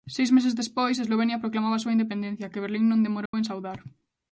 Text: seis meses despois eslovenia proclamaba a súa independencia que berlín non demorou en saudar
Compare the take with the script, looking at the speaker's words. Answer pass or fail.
pass